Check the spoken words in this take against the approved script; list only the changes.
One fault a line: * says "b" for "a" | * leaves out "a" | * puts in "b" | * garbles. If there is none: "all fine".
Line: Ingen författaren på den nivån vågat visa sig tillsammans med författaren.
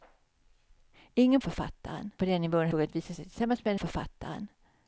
all fine